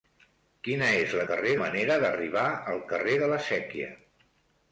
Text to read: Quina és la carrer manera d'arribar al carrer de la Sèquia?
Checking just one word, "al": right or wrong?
right